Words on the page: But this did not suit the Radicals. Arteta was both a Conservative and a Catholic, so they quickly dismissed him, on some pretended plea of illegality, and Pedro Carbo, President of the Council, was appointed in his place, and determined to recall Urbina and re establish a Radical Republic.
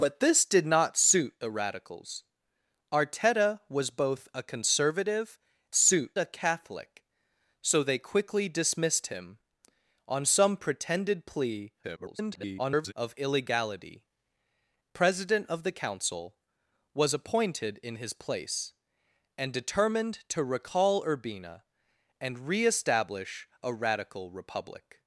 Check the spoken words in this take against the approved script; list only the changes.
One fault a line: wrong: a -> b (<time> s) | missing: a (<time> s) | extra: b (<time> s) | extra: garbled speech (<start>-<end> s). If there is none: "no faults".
wrong: and -> suit (5.7 s)
extra: garbled speech (11.8-12.9 s)
missing: and Pedro Carbo (14.1 s)